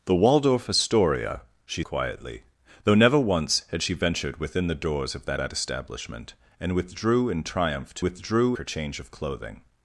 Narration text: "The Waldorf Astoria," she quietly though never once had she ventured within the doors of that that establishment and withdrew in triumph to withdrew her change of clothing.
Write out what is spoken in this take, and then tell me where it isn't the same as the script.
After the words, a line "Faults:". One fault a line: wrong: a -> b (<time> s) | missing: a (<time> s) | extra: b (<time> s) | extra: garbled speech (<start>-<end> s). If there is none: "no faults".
"The Waldorf Astoria," she quietly though never once had she ventured within the doors of that that establishment and withdrew in triumph to withdrew her change of clothing.
Faults:
no faults